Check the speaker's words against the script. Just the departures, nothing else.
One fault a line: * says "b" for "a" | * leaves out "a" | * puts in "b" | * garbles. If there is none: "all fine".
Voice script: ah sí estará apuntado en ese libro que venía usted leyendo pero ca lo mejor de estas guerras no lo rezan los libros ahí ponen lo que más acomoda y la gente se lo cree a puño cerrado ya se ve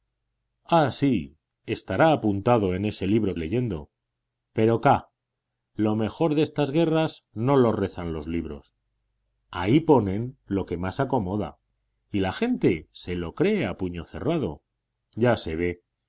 * leaves out "que venía usted"